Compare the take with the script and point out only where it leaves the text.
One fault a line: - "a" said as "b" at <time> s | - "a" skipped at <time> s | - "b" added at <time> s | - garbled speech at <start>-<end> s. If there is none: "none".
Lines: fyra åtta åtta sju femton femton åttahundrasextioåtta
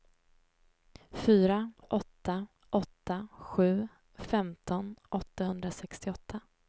- "femton" skipped at 5.0 s